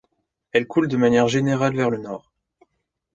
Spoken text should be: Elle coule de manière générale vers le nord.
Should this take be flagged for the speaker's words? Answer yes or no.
no